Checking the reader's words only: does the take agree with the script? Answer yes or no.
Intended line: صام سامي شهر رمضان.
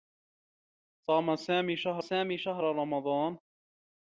no